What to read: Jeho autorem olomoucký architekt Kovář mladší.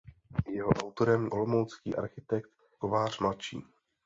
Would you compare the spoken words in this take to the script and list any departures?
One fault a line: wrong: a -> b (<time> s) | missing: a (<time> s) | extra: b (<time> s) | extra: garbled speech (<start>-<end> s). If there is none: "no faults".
no faults